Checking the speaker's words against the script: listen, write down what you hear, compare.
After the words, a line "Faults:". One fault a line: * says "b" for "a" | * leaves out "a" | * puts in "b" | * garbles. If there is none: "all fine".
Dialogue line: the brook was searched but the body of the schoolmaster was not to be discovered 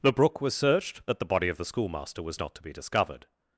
the brook was searched but the body of the schoolmaster was not to be discovered
Faults:
all fine